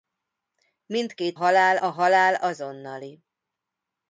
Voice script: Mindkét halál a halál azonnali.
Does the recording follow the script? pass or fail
pass